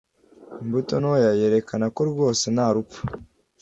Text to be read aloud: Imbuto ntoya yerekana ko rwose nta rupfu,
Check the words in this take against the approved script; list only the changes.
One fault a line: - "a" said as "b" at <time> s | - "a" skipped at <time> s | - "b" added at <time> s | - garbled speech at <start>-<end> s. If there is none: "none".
none